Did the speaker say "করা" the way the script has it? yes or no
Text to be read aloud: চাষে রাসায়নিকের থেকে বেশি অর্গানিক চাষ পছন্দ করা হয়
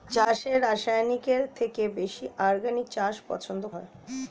no